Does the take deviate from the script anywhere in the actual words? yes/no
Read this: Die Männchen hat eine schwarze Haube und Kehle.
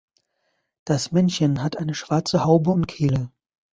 yes